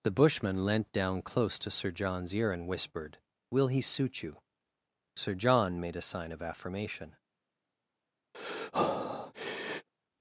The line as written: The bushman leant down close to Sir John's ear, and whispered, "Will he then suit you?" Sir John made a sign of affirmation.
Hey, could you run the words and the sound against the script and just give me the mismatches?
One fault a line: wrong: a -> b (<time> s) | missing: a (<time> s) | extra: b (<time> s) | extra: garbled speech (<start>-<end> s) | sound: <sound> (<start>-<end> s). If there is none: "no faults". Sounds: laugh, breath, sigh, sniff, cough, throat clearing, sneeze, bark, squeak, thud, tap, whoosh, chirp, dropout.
missing: then (3.8 s)
sound: breath (8.3-9.9 s)